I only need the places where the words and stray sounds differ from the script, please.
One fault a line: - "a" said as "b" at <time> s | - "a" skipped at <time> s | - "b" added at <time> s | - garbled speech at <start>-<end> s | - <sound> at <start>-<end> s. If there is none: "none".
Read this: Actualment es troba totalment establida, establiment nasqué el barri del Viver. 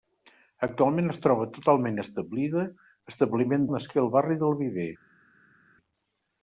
none